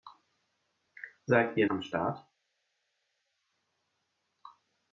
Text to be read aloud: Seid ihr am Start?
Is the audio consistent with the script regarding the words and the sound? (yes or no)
yes